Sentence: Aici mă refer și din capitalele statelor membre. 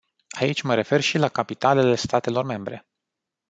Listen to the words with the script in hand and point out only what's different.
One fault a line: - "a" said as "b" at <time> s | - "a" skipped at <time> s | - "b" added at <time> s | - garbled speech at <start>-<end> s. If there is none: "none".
- "din" said as "la" at 1.2 s